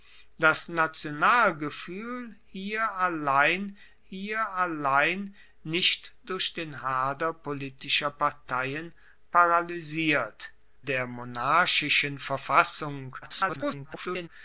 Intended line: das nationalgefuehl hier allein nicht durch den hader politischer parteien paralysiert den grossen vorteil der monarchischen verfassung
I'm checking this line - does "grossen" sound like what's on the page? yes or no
no